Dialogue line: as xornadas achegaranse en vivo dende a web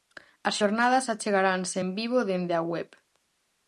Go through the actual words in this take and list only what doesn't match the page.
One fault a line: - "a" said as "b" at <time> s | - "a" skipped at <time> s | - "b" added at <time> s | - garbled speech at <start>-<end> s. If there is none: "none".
none